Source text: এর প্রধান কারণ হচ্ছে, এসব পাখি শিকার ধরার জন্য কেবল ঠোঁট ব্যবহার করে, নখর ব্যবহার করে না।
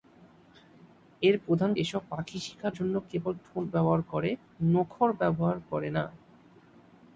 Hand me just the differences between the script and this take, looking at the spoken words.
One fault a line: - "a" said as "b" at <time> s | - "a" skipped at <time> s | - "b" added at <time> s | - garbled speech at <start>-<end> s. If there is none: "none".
- "কারণ হচ্ছে" skipped at 1.7 s
- "ধরার" skipped at 2.7 s